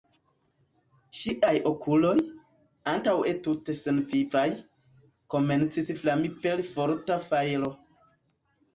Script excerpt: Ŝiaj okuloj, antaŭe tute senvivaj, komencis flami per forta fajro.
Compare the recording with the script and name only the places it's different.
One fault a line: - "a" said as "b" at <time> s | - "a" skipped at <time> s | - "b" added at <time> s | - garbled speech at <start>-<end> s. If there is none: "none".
none